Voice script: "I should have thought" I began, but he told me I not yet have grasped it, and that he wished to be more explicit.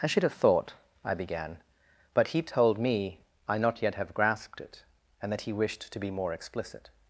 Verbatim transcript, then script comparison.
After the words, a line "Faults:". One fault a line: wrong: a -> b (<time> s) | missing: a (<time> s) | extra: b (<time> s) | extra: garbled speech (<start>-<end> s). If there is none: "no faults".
"I should have thought" I began, but he told me I not yet have grasped it, and that he wished to be more explicit.
Faults:
no faults